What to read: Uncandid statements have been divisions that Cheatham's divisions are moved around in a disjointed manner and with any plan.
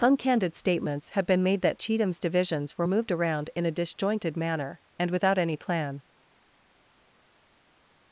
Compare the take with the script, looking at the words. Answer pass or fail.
fail